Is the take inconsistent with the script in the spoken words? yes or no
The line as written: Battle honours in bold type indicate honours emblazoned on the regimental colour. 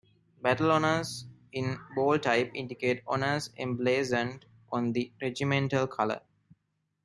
no